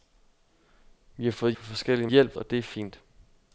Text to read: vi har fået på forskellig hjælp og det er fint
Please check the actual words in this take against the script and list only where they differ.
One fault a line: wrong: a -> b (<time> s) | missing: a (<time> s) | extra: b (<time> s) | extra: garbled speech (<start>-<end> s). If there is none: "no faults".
no faults